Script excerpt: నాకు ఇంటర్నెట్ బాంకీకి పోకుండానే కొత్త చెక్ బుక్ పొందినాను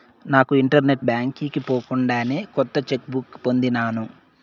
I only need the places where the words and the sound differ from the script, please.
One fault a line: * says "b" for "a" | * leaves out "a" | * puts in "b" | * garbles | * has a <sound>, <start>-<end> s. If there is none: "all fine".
all fine